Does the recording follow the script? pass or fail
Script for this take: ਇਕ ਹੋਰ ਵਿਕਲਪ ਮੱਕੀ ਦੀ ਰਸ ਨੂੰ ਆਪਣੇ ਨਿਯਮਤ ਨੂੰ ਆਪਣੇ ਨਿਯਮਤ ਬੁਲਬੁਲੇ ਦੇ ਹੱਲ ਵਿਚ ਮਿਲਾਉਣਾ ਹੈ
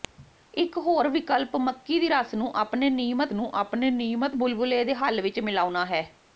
pass